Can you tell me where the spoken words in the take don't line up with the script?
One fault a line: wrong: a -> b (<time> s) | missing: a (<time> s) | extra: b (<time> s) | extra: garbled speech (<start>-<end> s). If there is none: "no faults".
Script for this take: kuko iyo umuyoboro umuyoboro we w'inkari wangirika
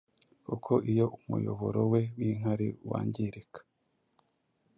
missing: umuyoboro (1.8 s)